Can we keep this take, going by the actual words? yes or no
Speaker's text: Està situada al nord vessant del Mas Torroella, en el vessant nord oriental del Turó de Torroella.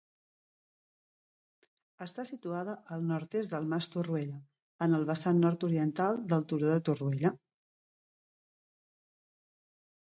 no